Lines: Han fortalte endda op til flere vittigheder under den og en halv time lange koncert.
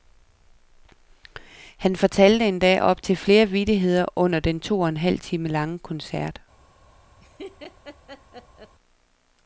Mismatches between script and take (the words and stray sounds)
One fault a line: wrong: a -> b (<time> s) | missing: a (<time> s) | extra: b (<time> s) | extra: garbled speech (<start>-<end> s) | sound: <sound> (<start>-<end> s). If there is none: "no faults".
extra: to (4.6 s)
sound: laugh (7.2-8.8 s)